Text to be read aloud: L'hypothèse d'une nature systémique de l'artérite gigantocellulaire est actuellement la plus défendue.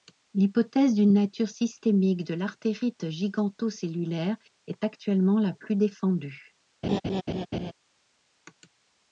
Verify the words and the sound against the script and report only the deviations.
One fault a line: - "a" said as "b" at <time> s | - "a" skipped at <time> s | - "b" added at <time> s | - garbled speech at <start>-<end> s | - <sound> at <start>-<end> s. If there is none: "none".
- laugh at 6.8-7.7 s